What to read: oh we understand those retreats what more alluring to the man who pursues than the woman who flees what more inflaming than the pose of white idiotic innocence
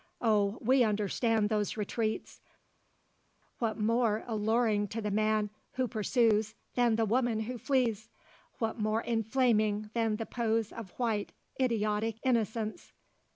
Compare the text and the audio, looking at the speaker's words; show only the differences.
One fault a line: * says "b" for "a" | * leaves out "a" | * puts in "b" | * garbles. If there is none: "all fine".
all fine